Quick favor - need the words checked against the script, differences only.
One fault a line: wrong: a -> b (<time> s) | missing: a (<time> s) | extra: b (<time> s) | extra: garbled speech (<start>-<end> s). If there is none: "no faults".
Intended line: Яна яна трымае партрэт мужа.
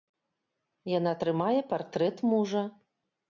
missing: яна (1.1 s)